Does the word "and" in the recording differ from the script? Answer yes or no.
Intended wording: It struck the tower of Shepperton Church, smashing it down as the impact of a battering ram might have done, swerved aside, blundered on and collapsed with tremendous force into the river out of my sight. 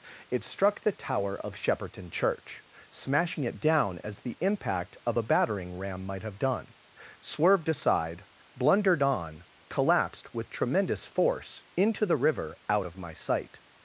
yes